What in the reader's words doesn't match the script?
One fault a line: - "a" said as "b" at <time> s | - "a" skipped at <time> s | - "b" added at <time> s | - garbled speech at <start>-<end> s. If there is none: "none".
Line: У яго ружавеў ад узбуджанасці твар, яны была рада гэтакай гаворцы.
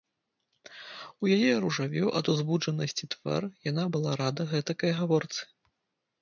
- "яго" said as "яе" at 1.4 s
- "яны" said as "яна" at 3.7 s